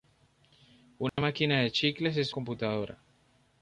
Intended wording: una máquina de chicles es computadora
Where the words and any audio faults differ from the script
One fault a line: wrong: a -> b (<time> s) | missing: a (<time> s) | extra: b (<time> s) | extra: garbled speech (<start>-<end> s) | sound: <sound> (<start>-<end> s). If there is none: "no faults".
sound: dropout (1.1-1.2 s)